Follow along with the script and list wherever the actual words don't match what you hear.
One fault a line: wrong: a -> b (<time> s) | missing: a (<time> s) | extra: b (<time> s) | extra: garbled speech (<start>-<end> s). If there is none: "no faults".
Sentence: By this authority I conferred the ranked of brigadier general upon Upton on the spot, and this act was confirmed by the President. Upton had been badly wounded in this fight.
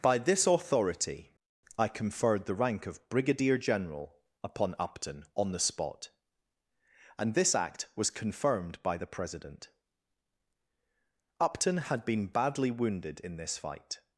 wrong: ranked -> rank (2.5 s)